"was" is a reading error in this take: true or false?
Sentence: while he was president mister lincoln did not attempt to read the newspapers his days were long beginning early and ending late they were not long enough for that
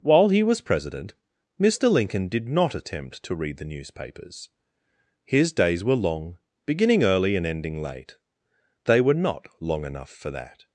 false